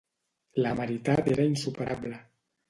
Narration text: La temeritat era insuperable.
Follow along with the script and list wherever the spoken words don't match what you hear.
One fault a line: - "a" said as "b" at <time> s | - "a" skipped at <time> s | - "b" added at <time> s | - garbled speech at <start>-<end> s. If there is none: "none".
none